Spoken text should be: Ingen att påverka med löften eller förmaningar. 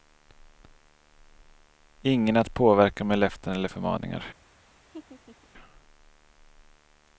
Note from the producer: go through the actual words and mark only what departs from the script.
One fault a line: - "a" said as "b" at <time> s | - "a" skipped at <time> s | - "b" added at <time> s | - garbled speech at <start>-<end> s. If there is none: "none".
none